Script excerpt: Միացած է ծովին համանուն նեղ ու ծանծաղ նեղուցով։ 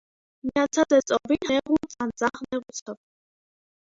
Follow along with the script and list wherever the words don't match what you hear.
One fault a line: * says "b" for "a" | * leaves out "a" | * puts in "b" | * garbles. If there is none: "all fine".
* leaves out "համանուն"